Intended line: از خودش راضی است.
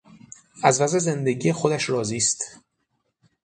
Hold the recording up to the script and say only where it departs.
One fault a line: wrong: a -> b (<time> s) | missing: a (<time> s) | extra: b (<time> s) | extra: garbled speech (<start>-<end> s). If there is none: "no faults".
extra: وضع زندگی (0.8 s)